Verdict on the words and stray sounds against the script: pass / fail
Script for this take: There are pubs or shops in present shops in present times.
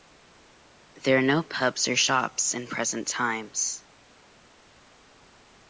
fail